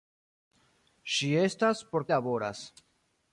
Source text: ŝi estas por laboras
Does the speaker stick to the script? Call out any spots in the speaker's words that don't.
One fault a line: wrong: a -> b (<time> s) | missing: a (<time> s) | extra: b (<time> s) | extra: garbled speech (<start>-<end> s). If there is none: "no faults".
no faults